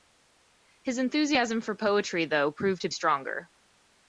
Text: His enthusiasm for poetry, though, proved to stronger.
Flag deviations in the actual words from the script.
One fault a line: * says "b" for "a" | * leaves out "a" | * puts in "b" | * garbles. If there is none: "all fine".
all fine